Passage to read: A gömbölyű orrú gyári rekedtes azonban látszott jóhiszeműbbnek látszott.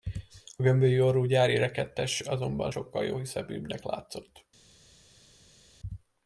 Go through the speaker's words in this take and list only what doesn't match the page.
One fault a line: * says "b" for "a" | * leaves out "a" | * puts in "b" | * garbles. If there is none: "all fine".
* says "sokkal" for "látszott"